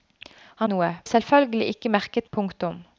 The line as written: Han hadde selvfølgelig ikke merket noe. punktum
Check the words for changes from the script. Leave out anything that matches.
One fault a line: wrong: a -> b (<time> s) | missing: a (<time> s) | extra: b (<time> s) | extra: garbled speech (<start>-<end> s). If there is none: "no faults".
wrong: hadde -> noe (0.7 s)
missing: noe (2.3 s)